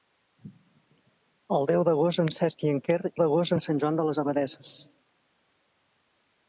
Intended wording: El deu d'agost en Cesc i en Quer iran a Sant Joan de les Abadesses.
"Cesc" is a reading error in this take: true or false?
false